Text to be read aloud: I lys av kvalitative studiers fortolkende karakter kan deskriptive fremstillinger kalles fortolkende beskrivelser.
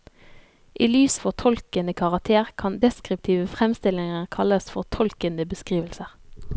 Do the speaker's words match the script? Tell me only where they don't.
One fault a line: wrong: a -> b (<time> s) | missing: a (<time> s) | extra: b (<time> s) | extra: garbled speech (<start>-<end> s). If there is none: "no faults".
missing: av kvalitative studiers (1.2 s)